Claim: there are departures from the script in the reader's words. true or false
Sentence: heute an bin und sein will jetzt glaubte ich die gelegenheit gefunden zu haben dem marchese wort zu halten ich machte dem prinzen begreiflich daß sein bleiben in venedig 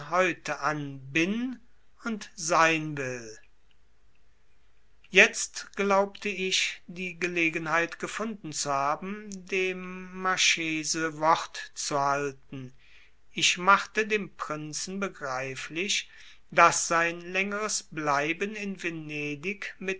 true